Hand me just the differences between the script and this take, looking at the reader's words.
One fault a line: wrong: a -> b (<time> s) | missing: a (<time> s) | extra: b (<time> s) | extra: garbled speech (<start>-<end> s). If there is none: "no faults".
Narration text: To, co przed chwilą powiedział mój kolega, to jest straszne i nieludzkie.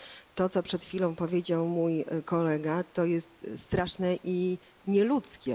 no faults